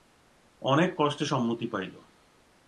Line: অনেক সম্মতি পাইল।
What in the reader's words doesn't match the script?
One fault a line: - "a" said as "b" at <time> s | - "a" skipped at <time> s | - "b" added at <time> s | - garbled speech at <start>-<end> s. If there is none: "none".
- "কষ্টে" added at 1.0 s